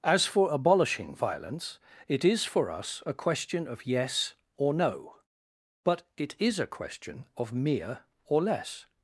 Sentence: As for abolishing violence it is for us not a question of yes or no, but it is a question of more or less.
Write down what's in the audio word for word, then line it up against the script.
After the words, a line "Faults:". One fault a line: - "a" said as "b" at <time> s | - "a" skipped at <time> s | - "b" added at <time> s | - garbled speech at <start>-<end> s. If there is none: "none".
As for abolishing violence it is for us a question of yes or no, but it is a question of mere or less.
Faults:
- "not" skipped at 3.0 s
- "more" said as "mere" at 7.5 s